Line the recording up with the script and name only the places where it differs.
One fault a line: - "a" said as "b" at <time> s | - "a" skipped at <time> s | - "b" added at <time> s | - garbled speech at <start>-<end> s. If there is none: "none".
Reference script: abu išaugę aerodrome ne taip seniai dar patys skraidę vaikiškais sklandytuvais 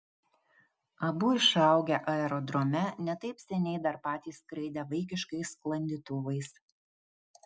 none